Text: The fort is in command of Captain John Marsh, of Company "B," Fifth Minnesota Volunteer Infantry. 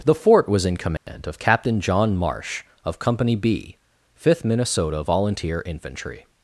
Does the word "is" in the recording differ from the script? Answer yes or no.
yes